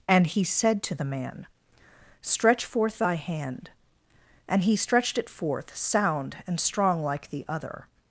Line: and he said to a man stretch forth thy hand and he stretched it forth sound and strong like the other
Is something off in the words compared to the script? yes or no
yes